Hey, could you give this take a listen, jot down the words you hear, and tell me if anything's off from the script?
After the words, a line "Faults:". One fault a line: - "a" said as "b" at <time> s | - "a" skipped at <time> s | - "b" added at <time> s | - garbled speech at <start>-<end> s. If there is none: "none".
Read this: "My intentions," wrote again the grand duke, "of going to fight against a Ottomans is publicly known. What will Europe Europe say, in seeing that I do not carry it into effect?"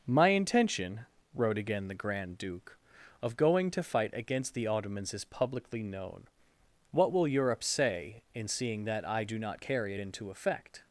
"My intention," wrote again the grand duke, "of going to fight against the Ottomans is publicly known. What will Europe say, in seeing that I do not carry it into effect?"
Faults:
- "intentions" said as "intention" at 0.3 s
- "a" said as "the" at 4.5 s
- "Europe" skipped at 7.6 s